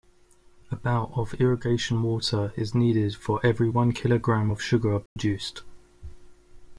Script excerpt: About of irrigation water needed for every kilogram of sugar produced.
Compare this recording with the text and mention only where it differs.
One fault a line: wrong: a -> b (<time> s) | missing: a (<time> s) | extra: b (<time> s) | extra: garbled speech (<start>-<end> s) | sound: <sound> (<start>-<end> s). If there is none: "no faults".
extra: is (2.5 s)
extra: one (3.7 s)
sound: dropout (5.1-5.2 s)